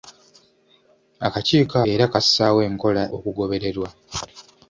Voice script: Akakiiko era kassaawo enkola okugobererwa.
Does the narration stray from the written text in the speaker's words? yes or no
no